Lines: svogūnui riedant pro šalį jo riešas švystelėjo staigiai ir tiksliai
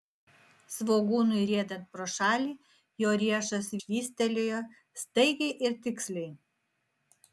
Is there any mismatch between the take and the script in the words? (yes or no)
no